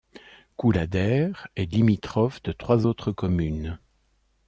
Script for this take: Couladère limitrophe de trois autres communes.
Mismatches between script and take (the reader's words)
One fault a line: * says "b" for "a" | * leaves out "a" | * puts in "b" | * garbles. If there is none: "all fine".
* puts in "est"